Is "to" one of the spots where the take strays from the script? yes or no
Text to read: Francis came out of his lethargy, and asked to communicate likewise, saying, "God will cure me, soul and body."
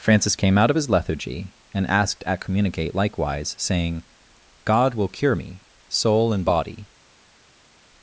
yes